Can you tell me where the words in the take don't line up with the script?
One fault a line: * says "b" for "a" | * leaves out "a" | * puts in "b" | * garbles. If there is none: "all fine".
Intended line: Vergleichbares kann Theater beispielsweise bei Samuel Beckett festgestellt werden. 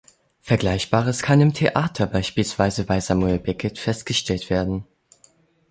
* puts in "im"